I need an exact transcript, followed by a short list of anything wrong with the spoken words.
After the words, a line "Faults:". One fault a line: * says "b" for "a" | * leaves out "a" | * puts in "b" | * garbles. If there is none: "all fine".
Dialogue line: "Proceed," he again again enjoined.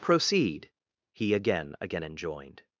"Proceed," he again again enjoined.
Faults:
all fine